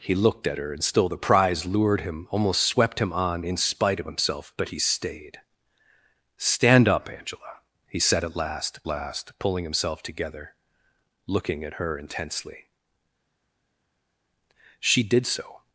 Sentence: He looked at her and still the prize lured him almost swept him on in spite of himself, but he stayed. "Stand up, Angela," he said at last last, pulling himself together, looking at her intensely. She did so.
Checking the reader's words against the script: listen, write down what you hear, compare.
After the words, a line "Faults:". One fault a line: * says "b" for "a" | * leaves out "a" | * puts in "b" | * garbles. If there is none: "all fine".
He looked at her and still the prize lured him almost swept him on in spite of himself, but he stayed. "Stand up, Angela," he said at last last, pulling himself together, looking at her intensely. She did so.
Faults:
all fine